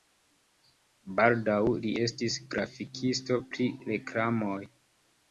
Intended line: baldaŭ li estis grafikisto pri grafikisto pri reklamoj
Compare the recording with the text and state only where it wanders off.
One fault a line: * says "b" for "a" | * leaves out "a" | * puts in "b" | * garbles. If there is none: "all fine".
* leaves out "grafikisto pri"